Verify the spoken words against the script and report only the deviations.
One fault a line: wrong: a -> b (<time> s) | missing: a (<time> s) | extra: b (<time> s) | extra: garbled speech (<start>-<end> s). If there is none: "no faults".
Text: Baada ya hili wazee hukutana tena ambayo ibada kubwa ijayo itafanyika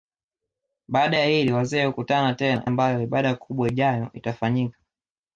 no faults